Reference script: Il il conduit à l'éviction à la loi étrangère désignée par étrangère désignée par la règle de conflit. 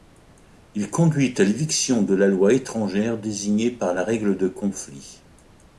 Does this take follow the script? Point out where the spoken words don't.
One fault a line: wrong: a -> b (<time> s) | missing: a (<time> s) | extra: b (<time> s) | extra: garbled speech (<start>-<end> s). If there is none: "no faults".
missing: il (0.9 s)
wrong: à -> de (2.0 s)
missing: étrangère désignée par (3.9 s)